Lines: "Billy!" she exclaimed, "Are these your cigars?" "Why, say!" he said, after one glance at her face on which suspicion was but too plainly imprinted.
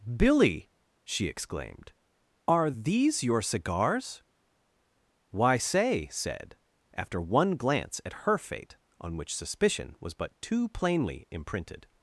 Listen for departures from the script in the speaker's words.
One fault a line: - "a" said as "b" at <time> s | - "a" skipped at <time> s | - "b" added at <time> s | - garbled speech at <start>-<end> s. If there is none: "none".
- "he" skipped at 6.1 s
- "face" said as "fate" at 8.4 s